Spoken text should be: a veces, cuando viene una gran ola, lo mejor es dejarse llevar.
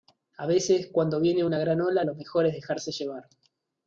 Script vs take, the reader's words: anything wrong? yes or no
no